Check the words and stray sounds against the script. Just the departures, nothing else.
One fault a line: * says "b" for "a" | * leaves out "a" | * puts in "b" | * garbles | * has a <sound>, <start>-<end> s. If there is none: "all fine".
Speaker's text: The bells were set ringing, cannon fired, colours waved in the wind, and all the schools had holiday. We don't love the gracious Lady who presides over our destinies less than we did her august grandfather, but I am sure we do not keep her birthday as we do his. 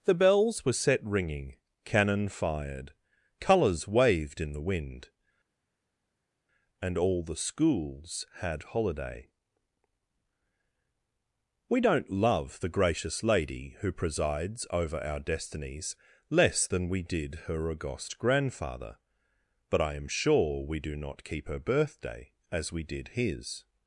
* says "did" for "do"